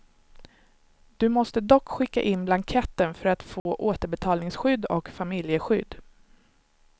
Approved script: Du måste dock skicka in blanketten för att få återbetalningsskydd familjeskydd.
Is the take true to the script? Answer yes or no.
no